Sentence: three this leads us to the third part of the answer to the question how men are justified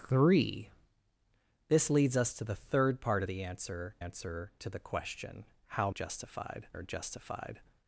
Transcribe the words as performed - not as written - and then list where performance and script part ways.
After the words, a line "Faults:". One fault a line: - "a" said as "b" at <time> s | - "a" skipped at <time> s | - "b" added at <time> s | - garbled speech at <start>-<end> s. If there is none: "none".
three this leads us to the third part of the answer answer to the question how justified are justified
Faults:
- "answer" added at 4.0 s
- "men" said as "justified" at 5.9 s